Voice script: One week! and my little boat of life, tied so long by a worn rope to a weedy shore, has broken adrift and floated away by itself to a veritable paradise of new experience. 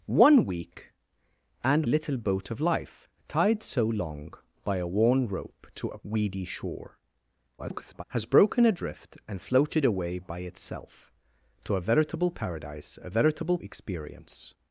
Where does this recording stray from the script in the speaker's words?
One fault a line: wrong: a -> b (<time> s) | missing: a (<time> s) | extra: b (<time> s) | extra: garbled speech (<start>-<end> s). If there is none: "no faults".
missing: my (1.9 s)
extra: garbled speech (7.6-8.0 s)
wrong: new -> veritable (13.1 s)